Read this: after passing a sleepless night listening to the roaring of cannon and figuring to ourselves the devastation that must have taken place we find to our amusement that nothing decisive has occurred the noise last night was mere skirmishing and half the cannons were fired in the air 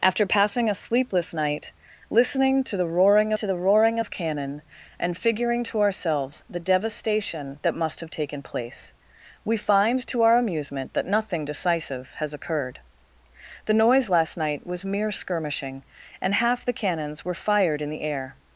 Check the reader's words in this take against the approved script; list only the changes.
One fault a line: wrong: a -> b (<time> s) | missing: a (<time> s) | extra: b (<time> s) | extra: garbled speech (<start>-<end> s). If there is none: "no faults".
extra: to the roaring (3.3 s)